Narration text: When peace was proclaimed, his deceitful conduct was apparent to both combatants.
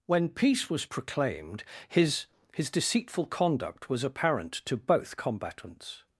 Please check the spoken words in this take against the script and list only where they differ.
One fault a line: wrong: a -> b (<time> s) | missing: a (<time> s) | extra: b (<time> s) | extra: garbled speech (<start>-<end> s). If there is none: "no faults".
extra: his (2.5 s)